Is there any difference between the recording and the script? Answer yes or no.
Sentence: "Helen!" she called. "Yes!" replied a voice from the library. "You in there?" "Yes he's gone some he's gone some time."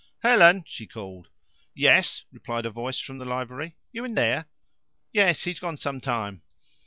yes